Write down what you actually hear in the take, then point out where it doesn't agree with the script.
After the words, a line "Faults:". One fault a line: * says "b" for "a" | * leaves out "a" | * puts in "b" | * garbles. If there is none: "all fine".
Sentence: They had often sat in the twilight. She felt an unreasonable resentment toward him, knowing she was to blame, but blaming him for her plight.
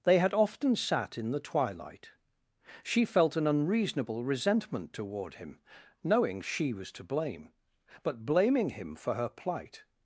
They had often sat in the twilight. She felt an unreasonable resentment toward him, knowing she was to blame, but blaming him for her plight.
Faults:
all fine